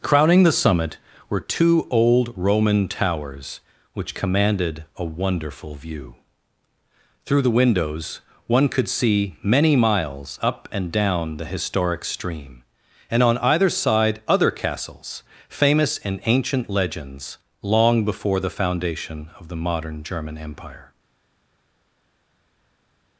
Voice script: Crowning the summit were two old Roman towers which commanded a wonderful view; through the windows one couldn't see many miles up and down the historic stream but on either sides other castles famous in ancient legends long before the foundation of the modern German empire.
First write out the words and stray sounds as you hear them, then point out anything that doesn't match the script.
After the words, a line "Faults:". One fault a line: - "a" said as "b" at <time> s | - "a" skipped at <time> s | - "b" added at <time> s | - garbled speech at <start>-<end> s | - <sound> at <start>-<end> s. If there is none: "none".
Crowning the summit were two old Roman towers which commanded a wonderful view; through the windows one could see many miles up and down the historic stream and on either side other castles famous in ancient legends long before the foundation of the modern German empire.
Faults:
- "couldn't" said as "could" at 8.7 s
- "but" said as "and" at 13.1 s
- "sides" said as "side" at 13.7 s